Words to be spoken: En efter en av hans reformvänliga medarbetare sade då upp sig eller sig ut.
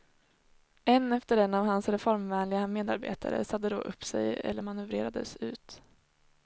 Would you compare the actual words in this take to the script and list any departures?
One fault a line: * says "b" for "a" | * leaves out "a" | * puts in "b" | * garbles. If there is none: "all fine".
* says "manövrerades" for "sig"